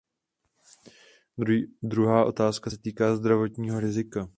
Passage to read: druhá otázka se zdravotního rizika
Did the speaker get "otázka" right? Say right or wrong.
right